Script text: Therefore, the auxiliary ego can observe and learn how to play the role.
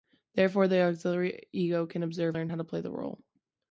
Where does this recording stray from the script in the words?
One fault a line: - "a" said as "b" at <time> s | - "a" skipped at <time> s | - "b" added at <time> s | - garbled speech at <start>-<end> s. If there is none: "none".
- "and" skipped at 2.4 s